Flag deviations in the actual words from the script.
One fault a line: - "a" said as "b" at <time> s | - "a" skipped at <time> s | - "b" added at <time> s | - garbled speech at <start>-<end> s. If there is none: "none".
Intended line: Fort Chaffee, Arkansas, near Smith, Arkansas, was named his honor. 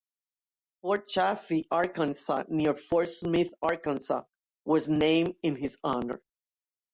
- "Fort" added at 2.7 s
- "in" added at 5.4 s